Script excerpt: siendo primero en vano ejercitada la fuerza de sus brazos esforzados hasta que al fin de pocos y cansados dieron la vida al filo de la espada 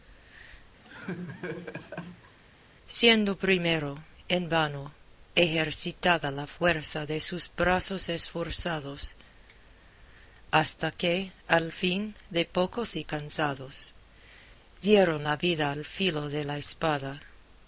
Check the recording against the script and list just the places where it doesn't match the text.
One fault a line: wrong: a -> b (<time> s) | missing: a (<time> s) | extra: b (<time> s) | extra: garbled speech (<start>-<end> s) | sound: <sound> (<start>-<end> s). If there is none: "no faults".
sound: laugh (0.8-2.4 s)